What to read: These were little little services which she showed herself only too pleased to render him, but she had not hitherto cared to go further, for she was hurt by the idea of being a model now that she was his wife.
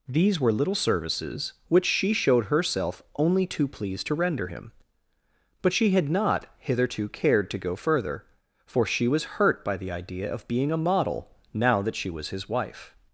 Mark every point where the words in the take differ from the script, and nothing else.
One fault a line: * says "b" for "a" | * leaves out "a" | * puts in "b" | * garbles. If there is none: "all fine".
* leaves out "little"